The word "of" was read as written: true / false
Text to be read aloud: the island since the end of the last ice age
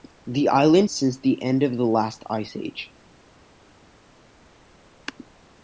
true